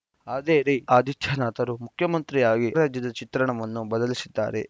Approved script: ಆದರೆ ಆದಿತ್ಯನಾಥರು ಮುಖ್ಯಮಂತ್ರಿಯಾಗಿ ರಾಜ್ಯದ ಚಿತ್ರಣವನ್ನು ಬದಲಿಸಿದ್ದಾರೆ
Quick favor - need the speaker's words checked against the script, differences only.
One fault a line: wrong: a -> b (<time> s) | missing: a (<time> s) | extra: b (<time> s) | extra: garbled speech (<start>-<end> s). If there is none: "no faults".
no faults